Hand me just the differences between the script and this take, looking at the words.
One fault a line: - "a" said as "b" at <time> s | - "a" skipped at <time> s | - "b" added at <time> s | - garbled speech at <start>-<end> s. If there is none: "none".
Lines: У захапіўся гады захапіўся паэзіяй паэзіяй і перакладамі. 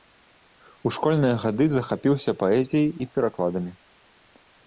- "захапіўся" said as "школьныя" at 0.9 s
- "паэзіяй" skipped at 2.9 s